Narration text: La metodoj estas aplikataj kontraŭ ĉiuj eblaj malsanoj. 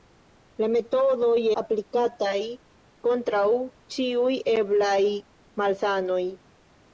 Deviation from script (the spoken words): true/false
true